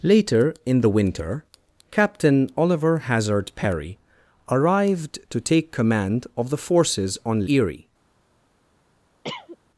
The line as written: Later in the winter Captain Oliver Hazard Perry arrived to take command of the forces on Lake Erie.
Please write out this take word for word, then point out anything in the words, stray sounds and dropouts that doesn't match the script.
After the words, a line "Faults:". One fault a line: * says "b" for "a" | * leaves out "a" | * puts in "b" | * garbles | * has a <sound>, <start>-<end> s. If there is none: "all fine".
Later in the winter Captain Oliver Hazard Perry arrived to take command of the forces on Erie.
Faults:
* leaves out "Lake"
* has a cough, 9.2-9.6 s